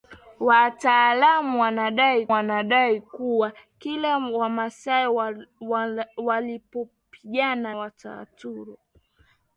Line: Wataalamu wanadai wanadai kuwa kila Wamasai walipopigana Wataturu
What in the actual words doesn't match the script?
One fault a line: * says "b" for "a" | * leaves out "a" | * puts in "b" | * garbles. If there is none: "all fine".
all fine